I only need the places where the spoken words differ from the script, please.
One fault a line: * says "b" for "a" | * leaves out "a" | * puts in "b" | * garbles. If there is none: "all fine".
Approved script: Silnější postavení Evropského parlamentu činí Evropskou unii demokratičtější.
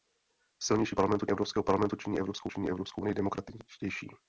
* says "parlamentu" for "postavení"
* puts in "činí Evropskou"